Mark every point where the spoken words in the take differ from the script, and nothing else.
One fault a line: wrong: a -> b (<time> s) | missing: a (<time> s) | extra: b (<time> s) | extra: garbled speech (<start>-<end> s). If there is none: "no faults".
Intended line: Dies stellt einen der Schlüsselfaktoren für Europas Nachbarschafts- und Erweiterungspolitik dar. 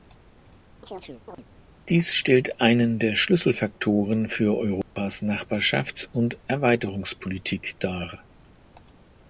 no faults